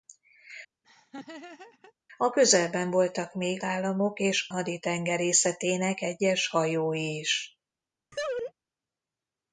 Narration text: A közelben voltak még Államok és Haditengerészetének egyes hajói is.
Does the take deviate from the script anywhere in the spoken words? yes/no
no